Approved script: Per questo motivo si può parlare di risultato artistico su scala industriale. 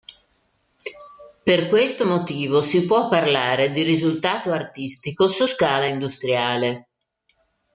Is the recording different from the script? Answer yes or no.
no